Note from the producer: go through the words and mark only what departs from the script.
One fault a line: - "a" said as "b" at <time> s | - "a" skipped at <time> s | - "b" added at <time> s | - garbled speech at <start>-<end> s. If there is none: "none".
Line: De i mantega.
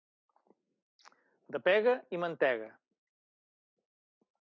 - "pega" added at 1.7 s